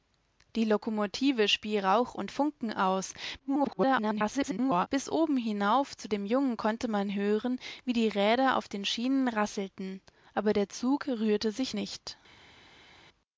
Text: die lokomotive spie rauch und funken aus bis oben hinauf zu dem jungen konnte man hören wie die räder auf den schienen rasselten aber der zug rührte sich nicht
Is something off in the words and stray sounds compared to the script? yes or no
yes